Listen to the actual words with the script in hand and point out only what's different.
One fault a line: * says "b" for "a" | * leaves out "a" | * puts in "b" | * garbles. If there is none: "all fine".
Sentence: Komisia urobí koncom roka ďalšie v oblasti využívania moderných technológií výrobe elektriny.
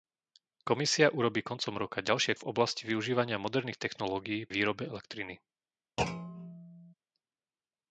all fine